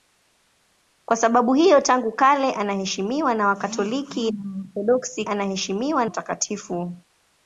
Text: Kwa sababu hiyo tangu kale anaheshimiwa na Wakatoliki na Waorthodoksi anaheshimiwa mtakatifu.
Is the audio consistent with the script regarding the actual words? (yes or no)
yes